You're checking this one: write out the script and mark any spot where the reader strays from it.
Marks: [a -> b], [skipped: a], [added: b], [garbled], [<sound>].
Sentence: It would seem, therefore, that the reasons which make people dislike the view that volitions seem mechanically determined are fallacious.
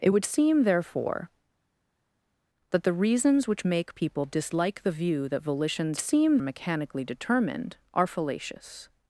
It would seem, therefore, that the reasons which make people dislike the view that volitions seem mechanically determined are fallacious.